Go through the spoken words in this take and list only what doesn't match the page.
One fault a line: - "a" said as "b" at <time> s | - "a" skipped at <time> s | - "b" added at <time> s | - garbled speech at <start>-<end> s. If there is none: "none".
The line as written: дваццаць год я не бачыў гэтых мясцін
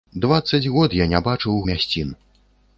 - "гэтых" skipped at 1.6 s